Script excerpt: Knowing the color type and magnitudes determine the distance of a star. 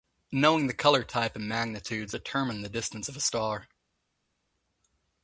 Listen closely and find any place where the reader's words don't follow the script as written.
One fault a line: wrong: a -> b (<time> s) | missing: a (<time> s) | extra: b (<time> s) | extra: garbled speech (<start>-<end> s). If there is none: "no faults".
no faults